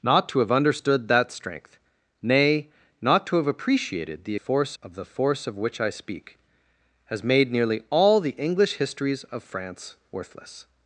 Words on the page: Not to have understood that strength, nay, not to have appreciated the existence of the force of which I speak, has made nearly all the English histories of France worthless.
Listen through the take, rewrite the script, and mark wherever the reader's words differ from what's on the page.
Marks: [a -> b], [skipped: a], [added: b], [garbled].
Not to have understood that strength, nay, not to have appreciated the [existence -> force] of the force of which I speak, has made nearly all the English histories of France worthless.